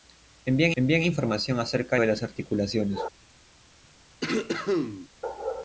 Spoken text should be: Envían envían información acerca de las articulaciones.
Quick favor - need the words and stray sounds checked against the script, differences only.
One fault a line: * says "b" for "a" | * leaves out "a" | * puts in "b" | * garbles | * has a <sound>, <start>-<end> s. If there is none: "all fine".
* has a cough, 4.2-5.1 s